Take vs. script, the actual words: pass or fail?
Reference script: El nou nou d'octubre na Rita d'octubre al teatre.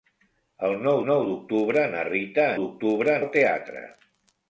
pass